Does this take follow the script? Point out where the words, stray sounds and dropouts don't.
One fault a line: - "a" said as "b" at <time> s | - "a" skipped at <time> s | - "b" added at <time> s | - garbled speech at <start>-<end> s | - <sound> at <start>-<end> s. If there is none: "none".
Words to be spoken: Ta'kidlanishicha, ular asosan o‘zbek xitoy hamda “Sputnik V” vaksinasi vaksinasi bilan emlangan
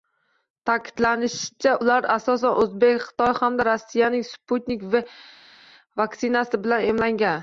- "Rossiyaning" added at 3.7 s
- "vaksinasi" skipped at 6.7 s